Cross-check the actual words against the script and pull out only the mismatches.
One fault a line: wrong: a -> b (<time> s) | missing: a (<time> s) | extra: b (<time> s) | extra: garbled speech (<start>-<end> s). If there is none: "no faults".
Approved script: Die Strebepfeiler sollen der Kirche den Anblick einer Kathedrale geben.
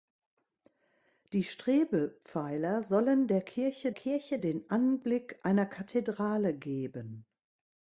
extra: Kirche (3.9 s)